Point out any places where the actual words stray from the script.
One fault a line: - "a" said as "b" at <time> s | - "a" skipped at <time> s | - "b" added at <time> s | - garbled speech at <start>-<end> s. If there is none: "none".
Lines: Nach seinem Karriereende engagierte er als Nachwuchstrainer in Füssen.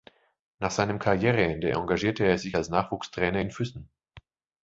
- "sich" added at 2.4 s